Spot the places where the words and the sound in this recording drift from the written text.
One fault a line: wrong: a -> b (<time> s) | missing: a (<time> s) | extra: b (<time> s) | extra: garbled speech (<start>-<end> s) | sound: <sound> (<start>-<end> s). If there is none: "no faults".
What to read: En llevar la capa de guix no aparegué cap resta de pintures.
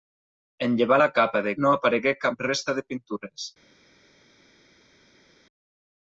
missing: guix (1.5 s)